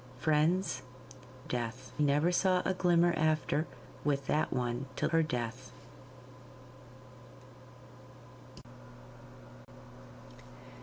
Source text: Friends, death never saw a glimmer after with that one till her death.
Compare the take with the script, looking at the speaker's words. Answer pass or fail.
pass